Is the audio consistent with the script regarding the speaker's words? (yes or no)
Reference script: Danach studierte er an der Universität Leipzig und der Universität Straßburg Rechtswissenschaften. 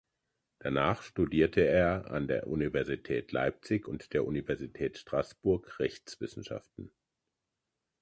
yes